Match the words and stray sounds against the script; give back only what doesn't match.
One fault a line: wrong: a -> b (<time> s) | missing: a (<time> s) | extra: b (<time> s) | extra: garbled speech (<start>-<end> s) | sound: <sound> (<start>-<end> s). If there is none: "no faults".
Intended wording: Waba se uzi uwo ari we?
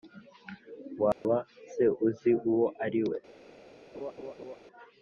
sound: dropout (1.1-1.2 s)
sound: laugh (3.9-4.6 s)